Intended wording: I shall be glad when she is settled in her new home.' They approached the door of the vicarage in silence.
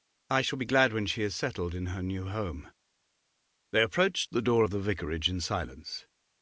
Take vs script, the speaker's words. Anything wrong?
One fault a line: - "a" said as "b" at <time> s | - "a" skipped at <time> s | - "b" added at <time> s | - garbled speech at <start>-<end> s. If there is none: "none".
none